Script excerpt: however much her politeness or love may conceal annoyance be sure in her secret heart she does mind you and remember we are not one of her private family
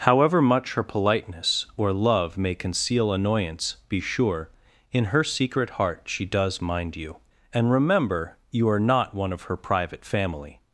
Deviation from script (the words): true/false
true